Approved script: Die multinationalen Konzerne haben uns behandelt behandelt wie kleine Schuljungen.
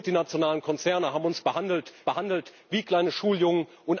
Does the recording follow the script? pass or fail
pass